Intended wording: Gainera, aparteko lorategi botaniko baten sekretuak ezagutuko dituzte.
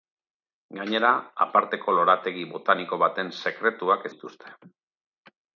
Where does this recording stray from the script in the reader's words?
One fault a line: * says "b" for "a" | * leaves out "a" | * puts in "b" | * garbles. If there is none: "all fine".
* leaves out "ezagutuko"